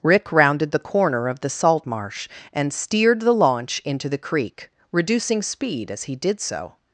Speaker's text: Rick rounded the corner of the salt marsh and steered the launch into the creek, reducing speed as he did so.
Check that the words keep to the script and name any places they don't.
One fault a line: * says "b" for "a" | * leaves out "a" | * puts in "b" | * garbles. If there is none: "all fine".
all fine